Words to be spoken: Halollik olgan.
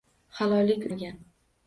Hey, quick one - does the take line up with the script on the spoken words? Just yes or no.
yes